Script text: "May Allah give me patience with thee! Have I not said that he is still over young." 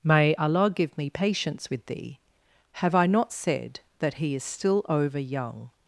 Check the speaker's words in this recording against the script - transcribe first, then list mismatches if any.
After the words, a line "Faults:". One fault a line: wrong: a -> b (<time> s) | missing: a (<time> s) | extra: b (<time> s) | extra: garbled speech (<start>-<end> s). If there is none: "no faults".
"May Allah give me patience with thee! Have I not said that he is still over young."
Faults:
no faults